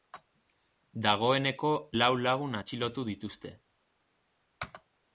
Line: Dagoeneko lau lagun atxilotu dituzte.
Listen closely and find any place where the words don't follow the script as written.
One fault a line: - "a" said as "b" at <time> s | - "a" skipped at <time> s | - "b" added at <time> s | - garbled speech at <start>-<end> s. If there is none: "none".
none